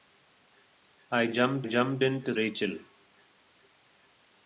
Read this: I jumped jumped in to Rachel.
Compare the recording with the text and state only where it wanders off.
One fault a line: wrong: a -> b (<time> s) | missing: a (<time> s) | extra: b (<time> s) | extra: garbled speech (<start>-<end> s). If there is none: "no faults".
no faults